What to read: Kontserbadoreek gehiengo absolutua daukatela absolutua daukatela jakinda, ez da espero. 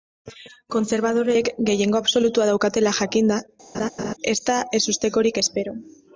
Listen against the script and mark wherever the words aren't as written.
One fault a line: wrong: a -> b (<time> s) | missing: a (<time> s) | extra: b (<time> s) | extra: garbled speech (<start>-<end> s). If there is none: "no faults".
missing: absolutua daukatela (3.0 s)
extra: ezustekorik (4.8 s)